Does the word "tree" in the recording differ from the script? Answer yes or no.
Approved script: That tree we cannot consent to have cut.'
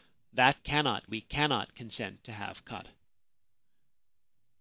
yes